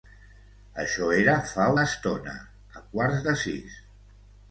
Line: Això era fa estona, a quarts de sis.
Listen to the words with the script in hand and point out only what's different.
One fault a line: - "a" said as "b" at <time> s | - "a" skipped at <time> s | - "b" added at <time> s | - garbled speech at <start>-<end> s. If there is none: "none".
none